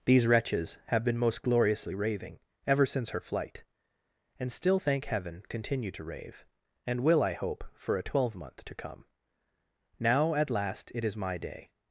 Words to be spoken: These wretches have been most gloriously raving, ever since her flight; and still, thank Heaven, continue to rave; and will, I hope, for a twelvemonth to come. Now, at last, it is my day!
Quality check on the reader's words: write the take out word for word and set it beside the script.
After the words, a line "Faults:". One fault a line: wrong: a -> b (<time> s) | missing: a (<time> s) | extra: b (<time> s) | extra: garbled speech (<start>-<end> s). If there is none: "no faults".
These wretches have been most gloriously raving, ever since her flight; and still, thank Heaven, continue to rave; and will, I hope, for a twelvemonth to come. Now, at last, it is my day!
Faults:
no faults